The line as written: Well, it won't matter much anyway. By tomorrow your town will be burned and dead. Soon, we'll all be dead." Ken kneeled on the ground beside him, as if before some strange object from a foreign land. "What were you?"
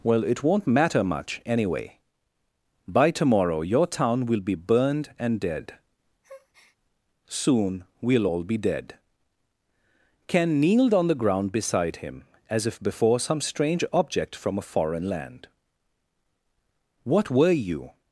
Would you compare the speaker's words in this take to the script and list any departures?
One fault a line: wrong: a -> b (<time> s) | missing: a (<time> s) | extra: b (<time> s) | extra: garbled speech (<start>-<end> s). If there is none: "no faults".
no faults